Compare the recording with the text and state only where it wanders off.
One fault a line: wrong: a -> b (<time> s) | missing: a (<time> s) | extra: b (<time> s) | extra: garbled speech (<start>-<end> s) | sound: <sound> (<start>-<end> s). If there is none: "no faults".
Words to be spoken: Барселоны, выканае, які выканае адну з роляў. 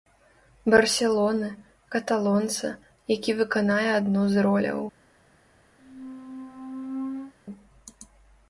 wrong: выканае -> каталонца (2.0 s)
sound: squeak (5.8-7.3 s)